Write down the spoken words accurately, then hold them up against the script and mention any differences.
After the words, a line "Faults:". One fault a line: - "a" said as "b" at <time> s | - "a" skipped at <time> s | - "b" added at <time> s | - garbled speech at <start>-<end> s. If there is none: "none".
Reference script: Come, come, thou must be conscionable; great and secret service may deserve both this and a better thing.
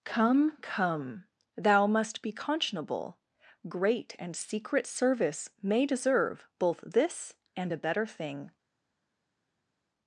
Come, come, thou must be conscionable; great and secret service may deserve both this and a better thing.
Faults:
none